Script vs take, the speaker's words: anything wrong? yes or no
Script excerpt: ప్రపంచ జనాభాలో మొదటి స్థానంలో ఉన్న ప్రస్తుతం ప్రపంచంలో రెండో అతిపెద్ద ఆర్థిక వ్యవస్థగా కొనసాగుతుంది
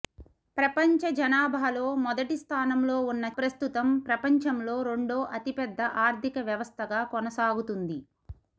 no